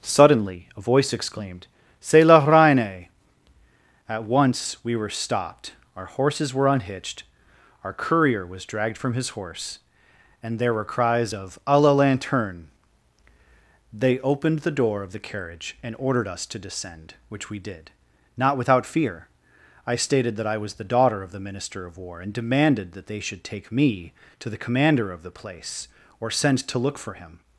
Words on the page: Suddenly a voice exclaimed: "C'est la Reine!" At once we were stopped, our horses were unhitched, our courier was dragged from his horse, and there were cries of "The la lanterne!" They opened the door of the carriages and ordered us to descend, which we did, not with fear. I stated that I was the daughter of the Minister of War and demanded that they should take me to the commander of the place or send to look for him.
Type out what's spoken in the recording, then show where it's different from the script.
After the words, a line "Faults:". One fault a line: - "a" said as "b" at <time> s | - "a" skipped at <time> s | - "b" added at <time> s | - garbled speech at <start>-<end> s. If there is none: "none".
Suddenly a voice exclaimed: "C'est la Reine!" At once we were stopped, our horses were unhitched, our courier was dragged from his horse, and there were cries of "A la lanterne!" They opened the door of the carriage and ordered us to descend, which we did, not without fear. I stated that I was the daughter of the Minister of War and demanded that they should take me to the commander of the place or send to look for him.
Faults:
- "The" said as "A" at 11.7 s
- "carriages" said as "carriage" at 15.2 s
- "with" said as "without" at 18.6 s